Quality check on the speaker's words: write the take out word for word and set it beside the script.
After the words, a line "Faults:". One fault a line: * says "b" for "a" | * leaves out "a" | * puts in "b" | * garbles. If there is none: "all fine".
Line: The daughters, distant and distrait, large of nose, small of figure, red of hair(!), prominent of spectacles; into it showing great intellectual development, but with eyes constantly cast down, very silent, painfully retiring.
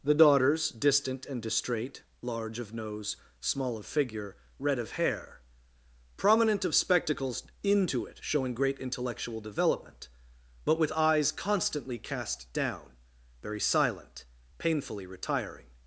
The daughters, distant and distrait, large of nose, small of figure, red of hair(!), prominent of spectacles; into it showing great intellectual development, but with eyes constantly cast down, very silent, painfully retiring.
Faults:
all fine